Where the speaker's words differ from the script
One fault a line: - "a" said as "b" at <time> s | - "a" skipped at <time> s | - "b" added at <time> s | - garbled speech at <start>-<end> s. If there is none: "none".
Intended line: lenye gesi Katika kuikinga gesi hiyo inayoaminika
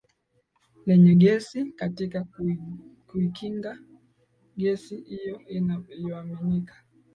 none